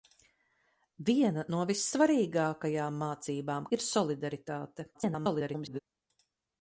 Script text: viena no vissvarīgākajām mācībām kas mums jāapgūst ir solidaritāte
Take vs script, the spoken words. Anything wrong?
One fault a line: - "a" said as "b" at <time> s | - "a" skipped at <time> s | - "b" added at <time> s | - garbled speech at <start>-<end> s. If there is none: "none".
- "kas mums jāapgūst" skipped at 3.7 s
- garbled speech at 4.9-5.8 s